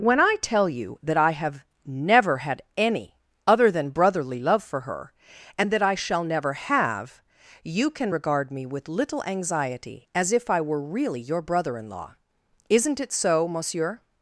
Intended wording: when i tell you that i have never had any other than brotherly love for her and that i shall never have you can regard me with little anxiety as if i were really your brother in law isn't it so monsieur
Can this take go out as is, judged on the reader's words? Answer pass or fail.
pass